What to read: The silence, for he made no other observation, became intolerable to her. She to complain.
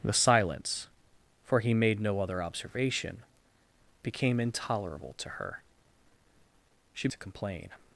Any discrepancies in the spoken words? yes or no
no